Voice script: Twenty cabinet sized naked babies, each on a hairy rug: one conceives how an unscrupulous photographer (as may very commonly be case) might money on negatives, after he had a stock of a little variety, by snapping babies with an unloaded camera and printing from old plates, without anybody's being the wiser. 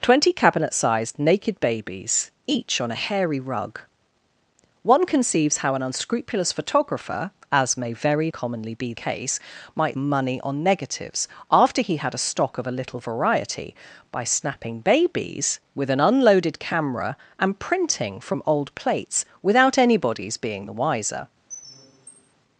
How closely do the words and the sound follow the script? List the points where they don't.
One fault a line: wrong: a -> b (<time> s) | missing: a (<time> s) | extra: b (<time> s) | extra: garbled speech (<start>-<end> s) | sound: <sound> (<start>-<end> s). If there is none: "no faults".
sound: squeak (21.5-22.3 s)